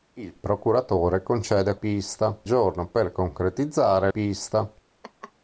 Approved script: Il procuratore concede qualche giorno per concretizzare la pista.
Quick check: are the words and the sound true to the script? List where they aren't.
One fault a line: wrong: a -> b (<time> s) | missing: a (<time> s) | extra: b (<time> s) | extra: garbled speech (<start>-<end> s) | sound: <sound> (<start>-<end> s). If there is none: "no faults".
wrong: qualche -> pista (1.8 s)
missing: la (4.1 s)
sound: laugh (5.0-5.3 s)